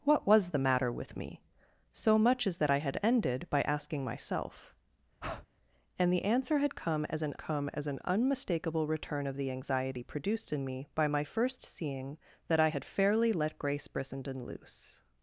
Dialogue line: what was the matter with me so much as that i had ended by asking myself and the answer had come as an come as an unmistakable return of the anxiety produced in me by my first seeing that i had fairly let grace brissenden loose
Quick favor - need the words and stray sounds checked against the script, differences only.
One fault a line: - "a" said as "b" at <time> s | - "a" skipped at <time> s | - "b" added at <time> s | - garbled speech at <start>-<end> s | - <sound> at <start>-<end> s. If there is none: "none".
- breath at 5.2-5.5 s